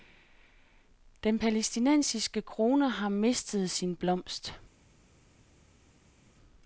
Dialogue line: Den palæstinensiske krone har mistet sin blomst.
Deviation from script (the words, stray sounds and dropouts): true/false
false